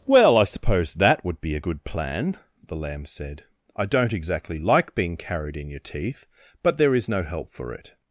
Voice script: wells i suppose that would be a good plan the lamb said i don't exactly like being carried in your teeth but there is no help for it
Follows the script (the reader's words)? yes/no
no